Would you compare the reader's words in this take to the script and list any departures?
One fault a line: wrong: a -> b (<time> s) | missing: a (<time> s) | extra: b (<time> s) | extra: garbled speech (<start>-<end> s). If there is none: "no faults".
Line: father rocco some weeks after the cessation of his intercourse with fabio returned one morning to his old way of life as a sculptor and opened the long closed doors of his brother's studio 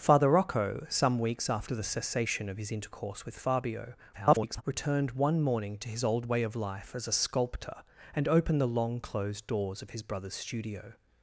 extra: garbled speech (4.1-4.6 s)